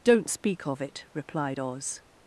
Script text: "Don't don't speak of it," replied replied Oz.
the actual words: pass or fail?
fail